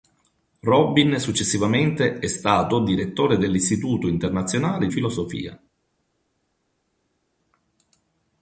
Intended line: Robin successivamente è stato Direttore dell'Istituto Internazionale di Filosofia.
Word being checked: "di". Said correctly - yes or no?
no